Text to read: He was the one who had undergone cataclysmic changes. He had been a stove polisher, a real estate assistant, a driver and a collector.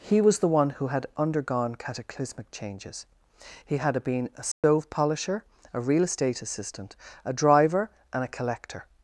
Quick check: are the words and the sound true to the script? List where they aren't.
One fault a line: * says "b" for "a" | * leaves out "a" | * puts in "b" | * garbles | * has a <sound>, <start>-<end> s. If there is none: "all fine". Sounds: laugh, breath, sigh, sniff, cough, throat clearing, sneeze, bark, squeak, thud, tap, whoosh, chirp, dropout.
* has a dropout, 4.5-4.6 s